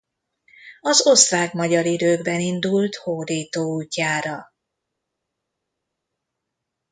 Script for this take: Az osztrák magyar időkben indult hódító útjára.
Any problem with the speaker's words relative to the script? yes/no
no